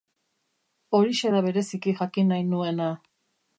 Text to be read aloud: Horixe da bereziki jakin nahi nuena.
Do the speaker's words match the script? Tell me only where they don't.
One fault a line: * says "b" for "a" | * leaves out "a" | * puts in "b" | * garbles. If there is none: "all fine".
all fine